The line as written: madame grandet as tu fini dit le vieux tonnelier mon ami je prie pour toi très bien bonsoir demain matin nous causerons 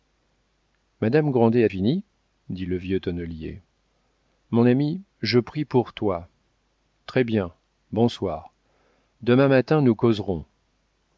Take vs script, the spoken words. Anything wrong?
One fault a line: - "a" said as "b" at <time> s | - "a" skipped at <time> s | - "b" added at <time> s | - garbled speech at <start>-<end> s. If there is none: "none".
- "tu" skipped at 1.7 s